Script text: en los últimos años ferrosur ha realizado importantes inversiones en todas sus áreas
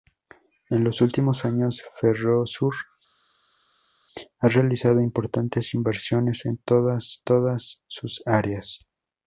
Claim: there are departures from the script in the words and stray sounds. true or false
true